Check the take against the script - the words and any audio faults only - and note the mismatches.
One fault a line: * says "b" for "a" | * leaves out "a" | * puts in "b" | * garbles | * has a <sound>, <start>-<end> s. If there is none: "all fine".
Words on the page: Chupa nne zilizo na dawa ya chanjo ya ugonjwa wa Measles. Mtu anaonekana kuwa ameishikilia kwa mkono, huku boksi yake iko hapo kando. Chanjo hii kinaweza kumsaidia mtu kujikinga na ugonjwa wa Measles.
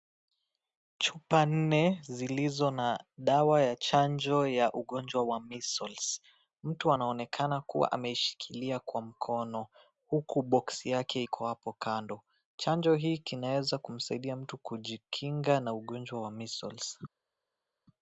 all fine